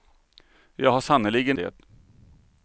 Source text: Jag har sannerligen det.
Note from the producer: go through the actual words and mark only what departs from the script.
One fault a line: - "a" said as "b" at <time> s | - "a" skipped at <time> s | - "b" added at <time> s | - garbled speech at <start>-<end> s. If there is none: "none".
none